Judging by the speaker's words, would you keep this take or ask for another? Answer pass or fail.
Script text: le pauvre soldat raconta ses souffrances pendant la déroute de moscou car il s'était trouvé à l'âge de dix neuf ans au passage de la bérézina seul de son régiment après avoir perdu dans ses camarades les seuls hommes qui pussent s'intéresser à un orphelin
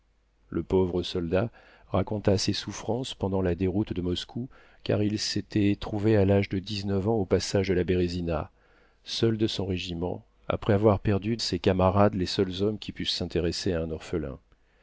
fail